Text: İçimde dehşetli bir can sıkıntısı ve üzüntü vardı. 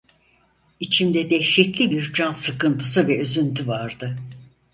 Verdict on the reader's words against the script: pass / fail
pass